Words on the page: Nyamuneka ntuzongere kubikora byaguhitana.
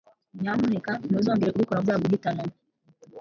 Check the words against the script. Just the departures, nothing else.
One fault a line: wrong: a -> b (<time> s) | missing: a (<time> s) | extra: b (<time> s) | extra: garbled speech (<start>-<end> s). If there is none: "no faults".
no faults